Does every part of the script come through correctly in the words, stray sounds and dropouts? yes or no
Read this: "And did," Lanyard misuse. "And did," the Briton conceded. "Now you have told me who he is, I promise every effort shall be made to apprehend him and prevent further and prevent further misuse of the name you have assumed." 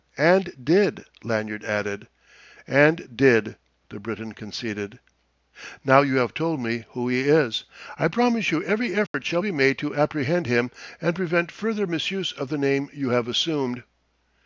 no